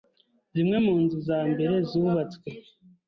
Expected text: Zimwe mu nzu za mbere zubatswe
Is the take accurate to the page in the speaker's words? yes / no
yes